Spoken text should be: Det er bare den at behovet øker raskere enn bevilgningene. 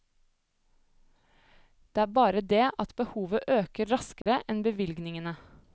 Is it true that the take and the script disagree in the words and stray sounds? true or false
true